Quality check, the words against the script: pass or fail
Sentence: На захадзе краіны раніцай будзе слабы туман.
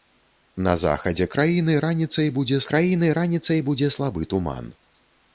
fail